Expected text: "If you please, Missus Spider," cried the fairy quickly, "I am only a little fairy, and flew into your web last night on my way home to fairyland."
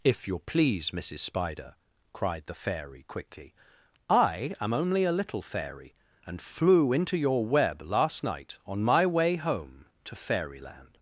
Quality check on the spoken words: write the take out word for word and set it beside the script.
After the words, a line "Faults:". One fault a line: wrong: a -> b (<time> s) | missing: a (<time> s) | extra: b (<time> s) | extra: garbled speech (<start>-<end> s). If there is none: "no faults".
"If you please, Missus Spider," cried the fairy quickly, "I am only a little fairy, and flew into your web last night on my way home to fairyland."
Faults:
no faults